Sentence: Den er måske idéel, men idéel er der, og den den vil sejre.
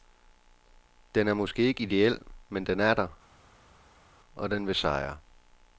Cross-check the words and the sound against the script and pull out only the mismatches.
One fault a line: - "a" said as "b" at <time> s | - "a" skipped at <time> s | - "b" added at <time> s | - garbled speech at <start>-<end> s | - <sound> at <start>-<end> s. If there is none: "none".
- "ikke" added at 1.6 s
- "idéel" said as "den" at 2.6 s
- "den" skipped at 4.7 s